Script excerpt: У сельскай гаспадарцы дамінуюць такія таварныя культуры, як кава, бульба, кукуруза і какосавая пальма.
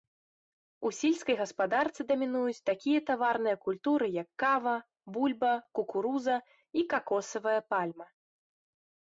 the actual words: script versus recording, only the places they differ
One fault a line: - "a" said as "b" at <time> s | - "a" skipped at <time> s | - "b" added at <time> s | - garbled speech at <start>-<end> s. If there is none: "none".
none